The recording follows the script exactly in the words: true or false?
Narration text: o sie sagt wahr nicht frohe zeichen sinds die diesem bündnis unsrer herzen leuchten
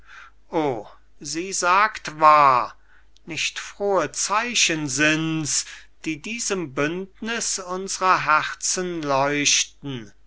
true